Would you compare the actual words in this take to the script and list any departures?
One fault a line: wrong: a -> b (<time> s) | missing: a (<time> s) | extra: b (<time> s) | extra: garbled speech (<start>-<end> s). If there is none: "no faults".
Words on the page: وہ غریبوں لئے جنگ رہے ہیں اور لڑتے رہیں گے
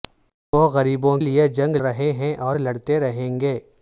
no faults